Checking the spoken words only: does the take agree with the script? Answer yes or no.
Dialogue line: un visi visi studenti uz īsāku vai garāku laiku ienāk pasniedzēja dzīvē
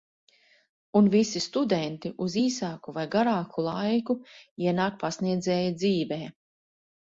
no